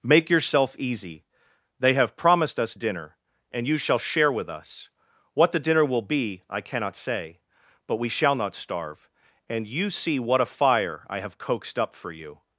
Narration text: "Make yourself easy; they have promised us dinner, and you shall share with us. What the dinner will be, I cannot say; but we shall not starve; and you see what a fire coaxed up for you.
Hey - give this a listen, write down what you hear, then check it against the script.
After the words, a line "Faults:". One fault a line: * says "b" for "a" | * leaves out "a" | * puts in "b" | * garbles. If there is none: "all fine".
"Make yourself easy; they have promised us dinner, and you shall share with us. What the dinner will be, I cannot say; but we shall not starve; and you see what a fire I have coaxed up for you.
Faults:
* puts in "I have"